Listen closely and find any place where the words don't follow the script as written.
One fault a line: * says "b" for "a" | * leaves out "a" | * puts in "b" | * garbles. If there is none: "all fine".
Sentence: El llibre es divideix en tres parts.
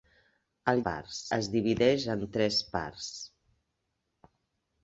* says "parts" for "llibre"